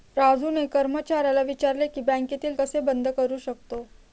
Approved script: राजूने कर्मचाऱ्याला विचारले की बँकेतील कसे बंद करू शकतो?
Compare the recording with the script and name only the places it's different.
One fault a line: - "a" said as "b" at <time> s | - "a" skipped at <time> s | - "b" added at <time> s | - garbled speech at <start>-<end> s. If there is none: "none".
none